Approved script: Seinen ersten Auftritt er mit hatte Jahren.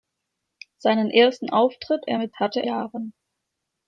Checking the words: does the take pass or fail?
pass